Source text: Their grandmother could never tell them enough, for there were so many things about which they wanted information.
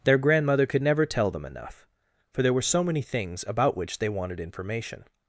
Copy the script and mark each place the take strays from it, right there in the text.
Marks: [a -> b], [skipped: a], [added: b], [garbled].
Their grandmother could never tell them enough, for there were so many things about which they wanted information.